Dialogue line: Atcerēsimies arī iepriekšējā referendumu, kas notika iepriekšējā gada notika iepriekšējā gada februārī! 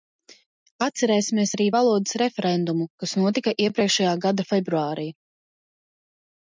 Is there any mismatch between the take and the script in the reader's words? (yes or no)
yes